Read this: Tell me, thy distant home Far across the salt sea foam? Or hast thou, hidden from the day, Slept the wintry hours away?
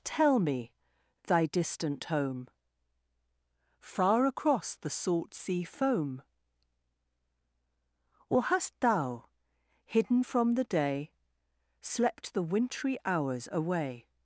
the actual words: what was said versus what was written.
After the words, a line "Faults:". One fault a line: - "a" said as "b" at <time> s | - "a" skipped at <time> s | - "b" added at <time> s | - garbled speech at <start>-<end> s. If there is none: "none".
Tell me, thy distant home Far across the salt sea foam? Or hast thou, hidden from the day, Slept the wintry hours away?
Faults:
none